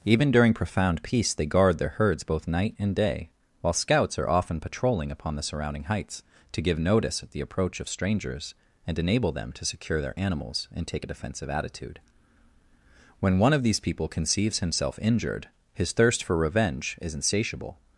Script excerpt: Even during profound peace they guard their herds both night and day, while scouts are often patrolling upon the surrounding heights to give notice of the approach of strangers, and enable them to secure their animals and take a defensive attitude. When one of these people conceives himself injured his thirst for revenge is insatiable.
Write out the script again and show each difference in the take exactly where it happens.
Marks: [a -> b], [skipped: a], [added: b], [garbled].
Even during profound peace they guard their herds both night and day, while scouts are often patrolling upon the surrounding heights to give notice [of -> at] the approach of strangers, and enable them to secure their animals and take a defensive attitude. When one of these people conceives himself injured his thirst for revenge is insatiable.